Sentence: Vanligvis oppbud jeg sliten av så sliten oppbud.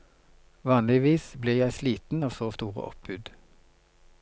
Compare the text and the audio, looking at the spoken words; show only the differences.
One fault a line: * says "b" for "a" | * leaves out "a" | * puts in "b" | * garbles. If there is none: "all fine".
* says "blir" for "oppbud"
* says "store" for "sliten"